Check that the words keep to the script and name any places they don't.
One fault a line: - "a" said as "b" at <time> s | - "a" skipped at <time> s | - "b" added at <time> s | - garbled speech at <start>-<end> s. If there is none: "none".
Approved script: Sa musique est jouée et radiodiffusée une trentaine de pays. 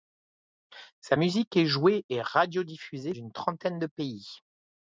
none